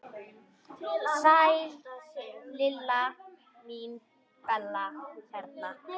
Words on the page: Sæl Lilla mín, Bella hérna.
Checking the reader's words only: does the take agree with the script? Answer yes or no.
yes